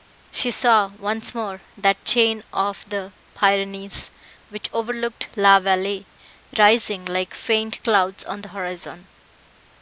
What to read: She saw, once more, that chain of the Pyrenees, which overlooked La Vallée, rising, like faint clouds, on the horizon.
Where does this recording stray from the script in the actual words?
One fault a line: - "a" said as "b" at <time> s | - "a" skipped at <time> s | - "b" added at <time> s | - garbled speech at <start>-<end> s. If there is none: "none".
none